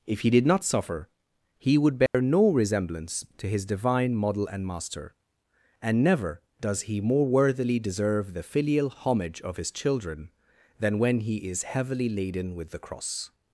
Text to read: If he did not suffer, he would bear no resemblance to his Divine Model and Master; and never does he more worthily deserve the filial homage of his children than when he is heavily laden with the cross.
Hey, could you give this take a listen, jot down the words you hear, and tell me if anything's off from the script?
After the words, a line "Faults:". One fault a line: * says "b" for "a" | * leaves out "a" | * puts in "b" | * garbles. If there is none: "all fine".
If he did not suffer, he would bear no resemblance to his Divine Model and Master; and never does he more worthily deserve the filial homage of his children than when he is heavily laden with the cross.
Faults:
all fine